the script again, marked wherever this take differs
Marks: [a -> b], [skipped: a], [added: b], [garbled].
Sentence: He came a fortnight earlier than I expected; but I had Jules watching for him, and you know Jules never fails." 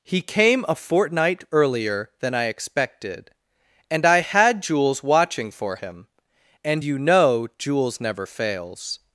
He came a fortnight earlier than I expected; [but -> and] I had Jules watching for him, and you know Jules never fails."